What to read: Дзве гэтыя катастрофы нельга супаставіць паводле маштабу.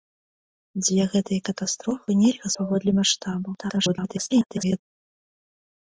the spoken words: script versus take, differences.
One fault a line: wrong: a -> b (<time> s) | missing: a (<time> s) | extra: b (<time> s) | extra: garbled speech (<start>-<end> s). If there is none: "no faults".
missing: супаставіць (2.5 s)
extra: garbled speech (3.6-4.8 s)